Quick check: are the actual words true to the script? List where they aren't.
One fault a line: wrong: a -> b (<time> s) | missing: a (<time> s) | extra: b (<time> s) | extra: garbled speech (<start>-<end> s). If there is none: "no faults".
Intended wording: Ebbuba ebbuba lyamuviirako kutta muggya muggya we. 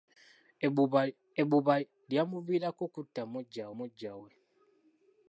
no faults